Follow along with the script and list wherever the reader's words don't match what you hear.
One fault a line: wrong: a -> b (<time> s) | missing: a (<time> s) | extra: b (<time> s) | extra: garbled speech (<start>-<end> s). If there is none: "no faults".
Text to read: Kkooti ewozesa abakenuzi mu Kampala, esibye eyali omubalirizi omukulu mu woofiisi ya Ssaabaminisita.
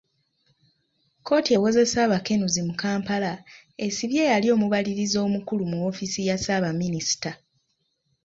no faults